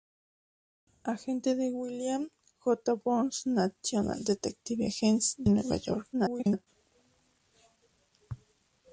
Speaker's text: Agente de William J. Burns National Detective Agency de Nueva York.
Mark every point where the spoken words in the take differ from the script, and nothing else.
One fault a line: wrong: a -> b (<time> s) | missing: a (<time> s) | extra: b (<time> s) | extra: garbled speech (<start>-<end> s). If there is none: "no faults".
missing: de (5.4 s)
extra: garbled speech (6.1-6.7 s)